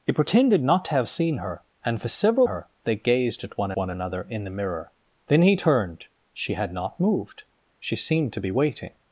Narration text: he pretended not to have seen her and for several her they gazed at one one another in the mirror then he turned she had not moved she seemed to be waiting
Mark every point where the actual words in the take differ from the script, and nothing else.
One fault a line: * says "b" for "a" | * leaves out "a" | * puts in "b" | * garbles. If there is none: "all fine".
all fine